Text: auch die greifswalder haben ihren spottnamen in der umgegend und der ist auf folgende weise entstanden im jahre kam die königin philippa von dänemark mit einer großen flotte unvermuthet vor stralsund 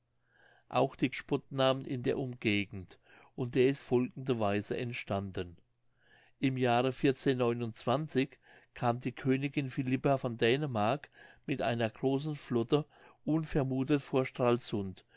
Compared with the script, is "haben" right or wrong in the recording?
wrong